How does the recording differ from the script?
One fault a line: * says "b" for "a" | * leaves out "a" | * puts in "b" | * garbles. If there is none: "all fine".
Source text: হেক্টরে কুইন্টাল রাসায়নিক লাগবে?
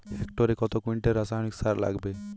* puts in "কত"
* puts in "সার"